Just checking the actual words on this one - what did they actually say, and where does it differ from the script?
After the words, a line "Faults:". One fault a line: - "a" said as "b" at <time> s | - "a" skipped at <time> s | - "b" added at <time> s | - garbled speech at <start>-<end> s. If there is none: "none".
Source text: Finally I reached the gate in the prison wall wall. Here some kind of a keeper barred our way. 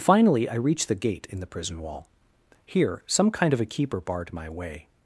Finally I reached the gate in the prison wall. Here some kind of a keeper barred my way.
Faults:
- "wall" skipped at 2.1 s
- "our" said as "my" at 4.3 s